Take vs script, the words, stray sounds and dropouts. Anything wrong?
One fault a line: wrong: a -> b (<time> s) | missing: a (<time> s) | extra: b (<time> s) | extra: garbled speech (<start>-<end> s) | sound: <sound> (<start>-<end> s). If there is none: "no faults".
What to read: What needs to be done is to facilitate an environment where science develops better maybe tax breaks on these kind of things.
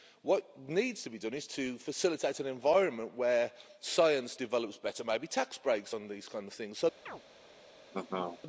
sound: chirp (7.1-7.2 s)
sound: laugh (7.9-8.4 s)